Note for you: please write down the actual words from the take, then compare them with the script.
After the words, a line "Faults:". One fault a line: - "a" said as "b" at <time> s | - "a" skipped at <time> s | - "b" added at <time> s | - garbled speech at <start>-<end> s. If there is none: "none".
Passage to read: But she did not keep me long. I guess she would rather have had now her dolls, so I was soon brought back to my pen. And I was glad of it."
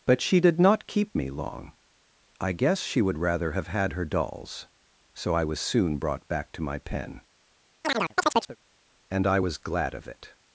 But she did not keep me long. I guess she would rather have had her dolls, so I was soon brought back to my pen. And I was glad of it."
Faults:
- "now" skipped at 3.9 s